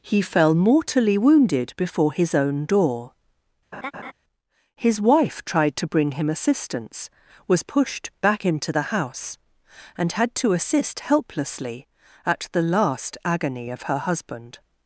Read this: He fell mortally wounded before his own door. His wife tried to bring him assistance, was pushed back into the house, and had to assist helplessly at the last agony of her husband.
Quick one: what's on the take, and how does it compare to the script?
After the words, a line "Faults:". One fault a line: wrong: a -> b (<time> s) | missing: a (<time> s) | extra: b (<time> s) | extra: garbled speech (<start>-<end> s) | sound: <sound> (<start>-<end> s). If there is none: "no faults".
He fell mortally wounded before his own door. His wife tried to bring him assistance, was pushed back into the house, and had to assist helplessly at the last agony of her husband.
Faults:
sound: laugh (3.7-4.1 s)